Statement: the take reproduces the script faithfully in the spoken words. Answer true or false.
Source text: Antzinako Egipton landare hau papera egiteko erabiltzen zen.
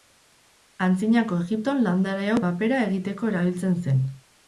true